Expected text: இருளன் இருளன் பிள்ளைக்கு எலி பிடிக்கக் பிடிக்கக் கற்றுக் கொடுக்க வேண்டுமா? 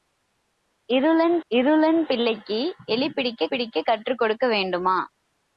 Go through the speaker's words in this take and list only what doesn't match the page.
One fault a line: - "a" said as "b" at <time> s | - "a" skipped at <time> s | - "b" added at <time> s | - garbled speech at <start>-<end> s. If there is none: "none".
none